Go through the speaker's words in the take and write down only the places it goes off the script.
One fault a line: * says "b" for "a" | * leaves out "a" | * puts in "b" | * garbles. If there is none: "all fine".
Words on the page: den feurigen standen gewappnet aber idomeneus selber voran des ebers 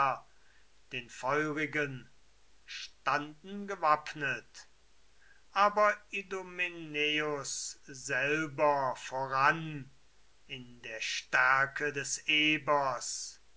* puts in "in der stärke"